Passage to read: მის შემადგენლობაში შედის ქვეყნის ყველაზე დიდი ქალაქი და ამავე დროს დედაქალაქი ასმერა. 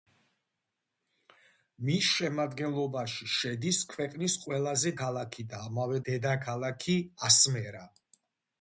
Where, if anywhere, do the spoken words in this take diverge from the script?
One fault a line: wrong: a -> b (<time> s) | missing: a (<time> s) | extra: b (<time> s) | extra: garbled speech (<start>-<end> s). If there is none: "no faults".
missing: დიდი (4.9 s)
missing: დროს (6.0 s)